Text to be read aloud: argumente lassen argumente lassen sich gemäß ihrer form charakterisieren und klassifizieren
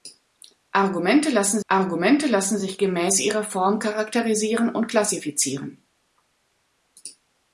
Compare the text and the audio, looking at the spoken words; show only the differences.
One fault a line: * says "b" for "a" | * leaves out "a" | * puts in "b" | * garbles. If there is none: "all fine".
all fine